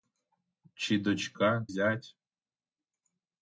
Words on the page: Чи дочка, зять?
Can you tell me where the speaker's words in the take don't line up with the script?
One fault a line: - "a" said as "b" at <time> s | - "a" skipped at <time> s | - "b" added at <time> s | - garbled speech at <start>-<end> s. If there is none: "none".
none